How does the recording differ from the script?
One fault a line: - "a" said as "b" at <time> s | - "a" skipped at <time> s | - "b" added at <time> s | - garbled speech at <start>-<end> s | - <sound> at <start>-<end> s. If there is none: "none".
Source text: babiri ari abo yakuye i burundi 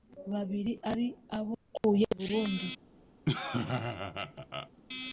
- dropout at 1.8-1.8 s
- laugh at 3.3-4.7 s